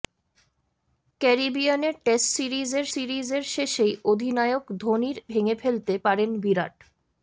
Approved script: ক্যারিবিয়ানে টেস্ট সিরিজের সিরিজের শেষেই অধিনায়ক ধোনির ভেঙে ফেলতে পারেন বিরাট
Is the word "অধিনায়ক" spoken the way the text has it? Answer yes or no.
yes